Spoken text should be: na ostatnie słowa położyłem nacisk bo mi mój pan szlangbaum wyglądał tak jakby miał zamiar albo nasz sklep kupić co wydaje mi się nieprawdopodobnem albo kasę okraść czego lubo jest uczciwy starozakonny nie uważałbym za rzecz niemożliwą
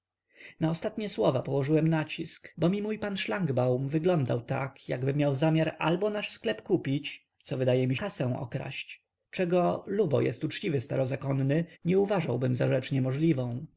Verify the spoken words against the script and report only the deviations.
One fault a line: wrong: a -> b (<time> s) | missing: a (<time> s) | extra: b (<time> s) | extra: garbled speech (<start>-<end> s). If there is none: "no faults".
missing: się nieprawdopodobnem albo (8.0 s)